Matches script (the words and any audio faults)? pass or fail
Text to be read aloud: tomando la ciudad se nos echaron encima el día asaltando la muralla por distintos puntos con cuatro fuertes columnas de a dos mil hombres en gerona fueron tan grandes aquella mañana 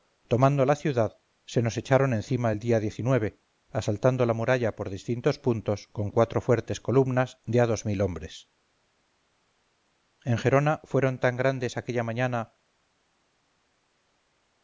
pass